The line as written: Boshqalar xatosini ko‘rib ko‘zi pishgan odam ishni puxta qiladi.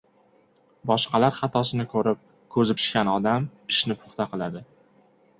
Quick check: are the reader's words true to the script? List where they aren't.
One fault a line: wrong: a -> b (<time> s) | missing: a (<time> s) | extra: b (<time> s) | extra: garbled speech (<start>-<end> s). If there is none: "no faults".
no faults